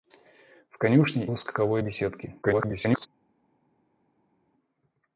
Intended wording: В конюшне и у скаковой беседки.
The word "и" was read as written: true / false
false